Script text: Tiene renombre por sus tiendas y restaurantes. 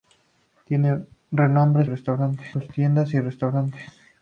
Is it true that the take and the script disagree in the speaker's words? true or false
true